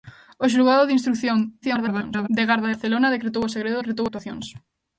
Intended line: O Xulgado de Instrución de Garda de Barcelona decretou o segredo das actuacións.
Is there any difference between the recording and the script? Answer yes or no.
yes